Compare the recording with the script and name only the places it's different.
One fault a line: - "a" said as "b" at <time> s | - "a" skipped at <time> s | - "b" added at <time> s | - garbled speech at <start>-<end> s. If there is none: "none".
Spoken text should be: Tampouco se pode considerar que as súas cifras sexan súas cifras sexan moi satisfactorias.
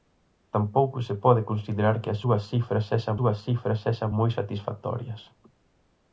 none